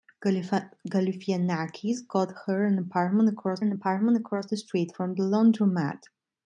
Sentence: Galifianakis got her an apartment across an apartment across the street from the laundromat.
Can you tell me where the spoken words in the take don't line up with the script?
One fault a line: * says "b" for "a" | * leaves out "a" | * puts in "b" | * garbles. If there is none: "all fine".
all fine